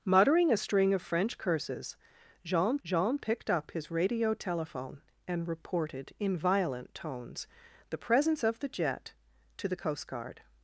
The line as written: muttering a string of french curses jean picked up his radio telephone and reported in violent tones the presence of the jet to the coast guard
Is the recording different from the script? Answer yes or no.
yes